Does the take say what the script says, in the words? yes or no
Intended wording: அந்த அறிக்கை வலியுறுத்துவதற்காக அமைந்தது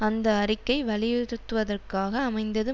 yes